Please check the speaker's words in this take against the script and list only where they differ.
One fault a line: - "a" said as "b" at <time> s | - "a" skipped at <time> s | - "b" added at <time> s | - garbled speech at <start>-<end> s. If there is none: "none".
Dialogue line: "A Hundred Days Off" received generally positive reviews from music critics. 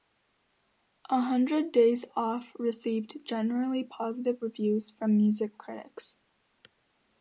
none